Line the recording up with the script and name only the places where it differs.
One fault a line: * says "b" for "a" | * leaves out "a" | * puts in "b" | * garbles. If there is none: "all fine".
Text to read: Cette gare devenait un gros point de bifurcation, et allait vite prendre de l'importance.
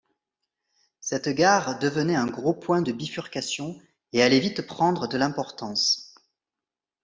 all fine